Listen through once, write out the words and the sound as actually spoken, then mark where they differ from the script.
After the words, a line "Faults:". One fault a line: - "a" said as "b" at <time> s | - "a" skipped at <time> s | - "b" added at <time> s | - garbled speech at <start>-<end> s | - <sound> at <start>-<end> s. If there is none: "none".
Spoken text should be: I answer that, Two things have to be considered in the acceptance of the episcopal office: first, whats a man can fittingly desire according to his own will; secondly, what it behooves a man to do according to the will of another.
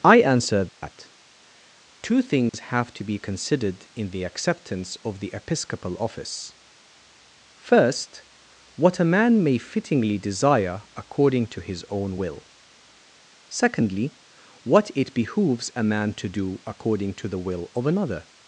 I answer that, Two things have to be considered in the acceptance of the episcopal office: first, what a man may fittingly desire according to his own will; secondly, what it behooves a man to do according to the will of another.
Faults:
- dropout at 0.7-0.8 s
- dropout at 2.5-2.5 s
- "whats" said as "what" at 8.8 s
- "can" said as "may" at 9.4 s